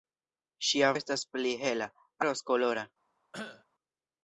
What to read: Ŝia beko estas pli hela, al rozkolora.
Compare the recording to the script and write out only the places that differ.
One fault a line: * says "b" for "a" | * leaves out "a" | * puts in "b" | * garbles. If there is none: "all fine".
* leaves out "beko"
* leaves out "al"